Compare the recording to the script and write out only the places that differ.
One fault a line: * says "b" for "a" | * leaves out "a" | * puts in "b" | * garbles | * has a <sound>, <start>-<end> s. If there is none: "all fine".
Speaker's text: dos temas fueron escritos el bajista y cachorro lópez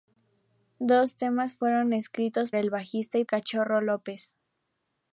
all fine